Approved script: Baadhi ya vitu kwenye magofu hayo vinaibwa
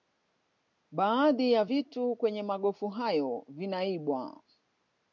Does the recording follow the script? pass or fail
pass